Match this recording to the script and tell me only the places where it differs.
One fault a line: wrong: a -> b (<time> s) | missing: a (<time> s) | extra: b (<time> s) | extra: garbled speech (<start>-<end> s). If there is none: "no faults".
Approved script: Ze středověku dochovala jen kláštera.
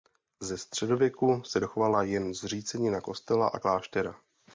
extra: se (1.4 s)
extra: zřícenina kostela a (2.3 s)